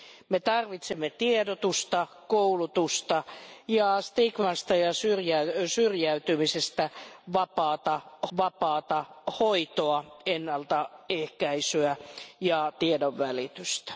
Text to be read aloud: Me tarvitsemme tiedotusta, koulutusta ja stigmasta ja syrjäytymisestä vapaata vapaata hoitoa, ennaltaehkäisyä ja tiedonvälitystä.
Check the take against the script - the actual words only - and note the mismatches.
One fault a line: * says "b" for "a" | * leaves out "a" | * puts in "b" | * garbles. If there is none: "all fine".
all fine